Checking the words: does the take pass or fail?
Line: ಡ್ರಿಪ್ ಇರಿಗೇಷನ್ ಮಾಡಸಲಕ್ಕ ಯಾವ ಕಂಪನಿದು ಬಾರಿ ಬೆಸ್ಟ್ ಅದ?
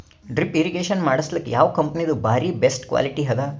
fail